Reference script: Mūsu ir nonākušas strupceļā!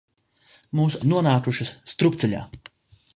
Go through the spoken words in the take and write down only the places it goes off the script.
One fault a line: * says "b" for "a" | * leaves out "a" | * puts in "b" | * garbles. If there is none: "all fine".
all fine